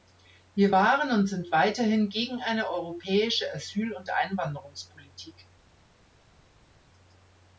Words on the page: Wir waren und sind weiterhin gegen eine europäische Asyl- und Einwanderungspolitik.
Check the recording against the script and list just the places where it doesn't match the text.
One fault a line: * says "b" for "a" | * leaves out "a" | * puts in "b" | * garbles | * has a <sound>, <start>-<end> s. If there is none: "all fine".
all fine